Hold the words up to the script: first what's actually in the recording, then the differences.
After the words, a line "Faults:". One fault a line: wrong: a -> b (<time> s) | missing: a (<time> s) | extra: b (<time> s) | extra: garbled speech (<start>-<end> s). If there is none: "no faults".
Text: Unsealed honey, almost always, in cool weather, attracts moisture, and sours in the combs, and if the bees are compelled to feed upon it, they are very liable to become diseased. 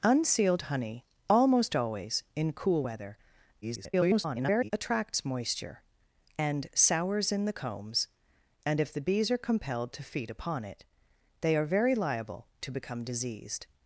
Unsealed honey, almost always, in cool weather, [garbled] attracts moisture, and sours in the combs, and if the bees are compelled to feed upon it, they are very liable to become diseased.
Faults:
extra: garbled speech (3.6-4.7 s)